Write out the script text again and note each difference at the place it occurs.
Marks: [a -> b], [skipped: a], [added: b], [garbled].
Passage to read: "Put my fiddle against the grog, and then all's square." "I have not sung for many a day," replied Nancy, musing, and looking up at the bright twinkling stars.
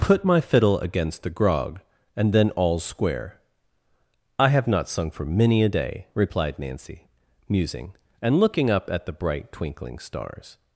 "Put my fiddle against the grog, and then all's square." "I have not sung for many a day," replied Nancy, musing, and looking up at the bright twinkling stars.